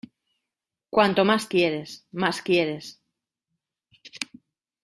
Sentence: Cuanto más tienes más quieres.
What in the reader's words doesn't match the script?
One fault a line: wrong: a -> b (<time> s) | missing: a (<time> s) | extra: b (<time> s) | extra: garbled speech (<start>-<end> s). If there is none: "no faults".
wrong: tienes -> quieres (1.5 s)